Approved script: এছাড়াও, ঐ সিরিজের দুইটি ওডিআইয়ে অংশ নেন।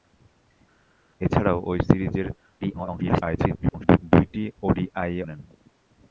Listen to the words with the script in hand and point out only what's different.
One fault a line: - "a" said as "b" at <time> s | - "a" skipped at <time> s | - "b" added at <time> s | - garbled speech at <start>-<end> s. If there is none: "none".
- garbled speech at 2.6-4.0 s
- "অংশ" skipped at 5.2 s